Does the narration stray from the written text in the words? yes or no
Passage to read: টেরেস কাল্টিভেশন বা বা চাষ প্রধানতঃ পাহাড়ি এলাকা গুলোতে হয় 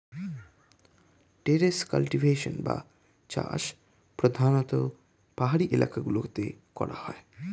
yes